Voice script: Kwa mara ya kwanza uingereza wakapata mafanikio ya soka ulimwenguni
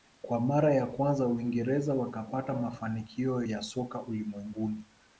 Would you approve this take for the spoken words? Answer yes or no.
yes